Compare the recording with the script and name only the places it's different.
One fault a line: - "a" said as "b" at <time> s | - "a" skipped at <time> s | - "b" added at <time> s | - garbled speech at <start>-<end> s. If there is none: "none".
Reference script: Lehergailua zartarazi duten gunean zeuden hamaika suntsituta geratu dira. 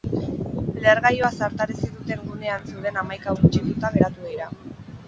none